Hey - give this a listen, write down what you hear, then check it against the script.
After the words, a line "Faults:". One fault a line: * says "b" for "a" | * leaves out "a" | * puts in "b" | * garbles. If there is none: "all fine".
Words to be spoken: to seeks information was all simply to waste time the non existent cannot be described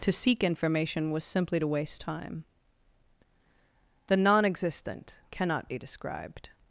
to seek information was simply to waste time the non existent cannot be described
Faults:
* says "seek" for "seeks"
* leaves out "all"